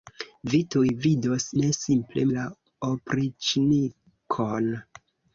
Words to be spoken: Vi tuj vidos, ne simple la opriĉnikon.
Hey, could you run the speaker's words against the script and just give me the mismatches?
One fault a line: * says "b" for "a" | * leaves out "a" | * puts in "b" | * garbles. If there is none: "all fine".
all fine